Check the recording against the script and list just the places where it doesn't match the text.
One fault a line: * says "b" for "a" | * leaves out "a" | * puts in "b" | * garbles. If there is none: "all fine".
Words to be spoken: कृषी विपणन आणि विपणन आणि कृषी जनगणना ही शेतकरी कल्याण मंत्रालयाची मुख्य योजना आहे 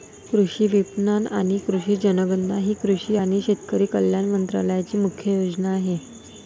* leaves out "विपणन आणि"
* puts in "कृषी आणि"